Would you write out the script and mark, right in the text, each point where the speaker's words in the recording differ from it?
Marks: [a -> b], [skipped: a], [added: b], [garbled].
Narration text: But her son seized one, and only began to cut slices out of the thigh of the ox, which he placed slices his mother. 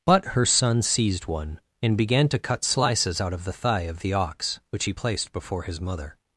But her son seized one, and [skipped: only] began to cut slices out of the thigh of the ox, which he placed [slices -> before] his mother.